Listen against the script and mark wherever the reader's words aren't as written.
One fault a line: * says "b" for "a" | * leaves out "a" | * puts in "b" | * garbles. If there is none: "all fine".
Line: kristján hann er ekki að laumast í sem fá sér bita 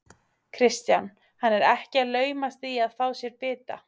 * says "að" for "sem"